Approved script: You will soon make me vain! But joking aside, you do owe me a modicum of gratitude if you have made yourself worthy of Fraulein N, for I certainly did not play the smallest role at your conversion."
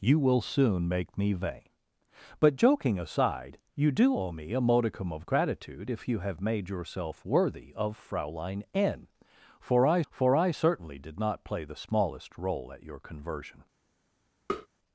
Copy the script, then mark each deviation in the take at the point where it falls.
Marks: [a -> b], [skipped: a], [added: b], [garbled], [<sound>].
You will soon make me vain! But joking aside, you do owe me a modicum of gratitude if you have made yourself worthy of Fraulein N, for I [added: for I] certainly did not play the smallest role at your conversion." [tap]